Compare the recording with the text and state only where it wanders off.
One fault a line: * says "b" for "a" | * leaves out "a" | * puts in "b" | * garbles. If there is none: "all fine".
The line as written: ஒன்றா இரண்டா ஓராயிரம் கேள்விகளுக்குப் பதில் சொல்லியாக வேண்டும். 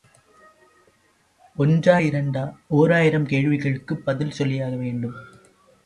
all fine